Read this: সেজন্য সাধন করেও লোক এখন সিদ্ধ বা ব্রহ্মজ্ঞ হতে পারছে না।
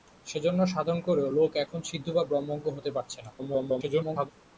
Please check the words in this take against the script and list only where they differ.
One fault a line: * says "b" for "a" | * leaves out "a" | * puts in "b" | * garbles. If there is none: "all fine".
* garbles